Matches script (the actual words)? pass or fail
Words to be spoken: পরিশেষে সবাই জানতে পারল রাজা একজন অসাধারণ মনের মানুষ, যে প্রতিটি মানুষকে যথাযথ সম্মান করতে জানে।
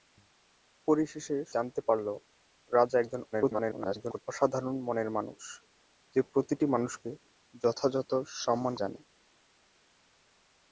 fail